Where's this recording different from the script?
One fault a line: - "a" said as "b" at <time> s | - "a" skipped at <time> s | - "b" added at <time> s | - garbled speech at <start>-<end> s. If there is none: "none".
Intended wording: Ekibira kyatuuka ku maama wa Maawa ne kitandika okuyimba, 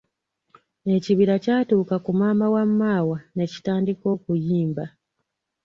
none